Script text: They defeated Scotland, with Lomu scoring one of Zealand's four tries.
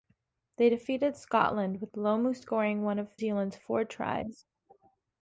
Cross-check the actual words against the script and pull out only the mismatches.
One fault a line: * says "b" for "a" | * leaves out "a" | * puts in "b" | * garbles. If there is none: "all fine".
all fine